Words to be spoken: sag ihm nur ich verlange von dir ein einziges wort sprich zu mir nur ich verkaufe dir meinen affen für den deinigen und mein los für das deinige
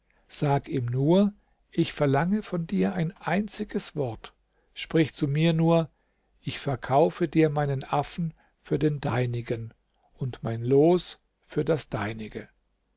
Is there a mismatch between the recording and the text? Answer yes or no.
no